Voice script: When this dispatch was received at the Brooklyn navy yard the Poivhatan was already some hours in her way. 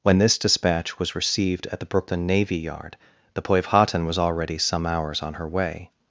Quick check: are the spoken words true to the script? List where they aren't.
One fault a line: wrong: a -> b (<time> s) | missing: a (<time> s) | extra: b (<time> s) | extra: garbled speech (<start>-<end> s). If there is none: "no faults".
wrong: in -> on (5.2 s)